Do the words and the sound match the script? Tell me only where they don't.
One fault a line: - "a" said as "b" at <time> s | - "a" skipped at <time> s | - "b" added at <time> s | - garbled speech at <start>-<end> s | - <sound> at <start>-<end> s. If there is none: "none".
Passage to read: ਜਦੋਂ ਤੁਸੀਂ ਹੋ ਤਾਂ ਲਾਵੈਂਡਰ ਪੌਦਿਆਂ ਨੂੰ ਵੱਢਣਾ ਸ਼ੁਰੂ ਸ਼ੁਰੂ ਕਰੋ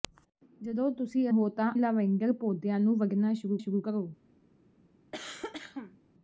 - cough at 5.1-6.0 s